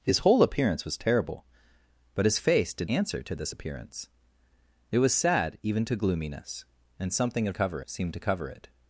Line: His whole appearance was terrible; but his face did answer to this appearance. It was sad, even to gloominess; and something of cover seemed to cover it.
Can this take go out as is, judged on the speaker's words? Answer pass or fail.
pass